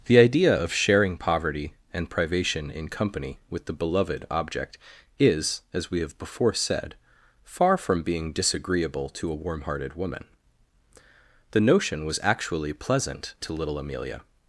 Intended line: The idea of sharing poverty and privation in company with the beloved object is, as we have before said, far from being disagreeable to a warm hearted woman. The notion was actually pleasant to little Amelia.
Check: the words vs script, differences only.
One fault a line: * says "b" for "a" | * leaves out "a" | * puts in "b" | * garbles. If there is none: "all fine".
all fine